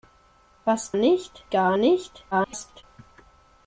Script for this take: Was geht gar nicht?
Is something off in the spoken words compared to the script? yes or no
yes